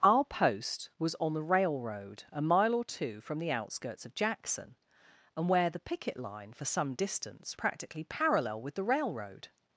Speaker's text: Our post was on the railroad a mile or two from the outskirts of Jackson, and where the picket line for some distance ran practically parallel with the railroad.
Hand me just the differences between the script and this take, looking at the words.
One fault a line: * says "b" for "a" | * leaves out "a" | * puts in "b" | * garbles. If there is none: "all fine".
* leaves out "ran"